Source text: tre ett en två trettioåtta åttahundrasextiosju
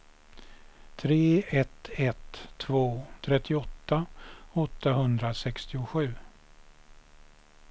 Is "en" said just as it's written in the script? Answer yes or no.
no